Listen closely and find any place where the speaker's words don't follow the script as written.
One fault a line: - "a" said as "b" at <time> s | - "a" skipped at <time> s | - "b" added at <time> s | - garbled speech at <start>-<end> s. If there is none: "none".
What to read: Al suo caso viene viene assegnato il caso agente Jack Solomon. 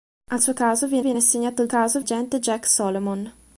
none